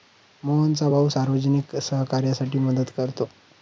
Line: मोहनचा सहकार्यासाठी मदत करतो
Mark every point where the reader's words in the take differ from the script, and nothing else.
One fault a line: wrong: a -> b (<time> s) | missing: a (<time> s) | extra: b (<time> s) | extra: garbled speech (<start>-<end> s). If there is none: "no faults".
extra: भाऊ सार्वजनिक (0.9 s)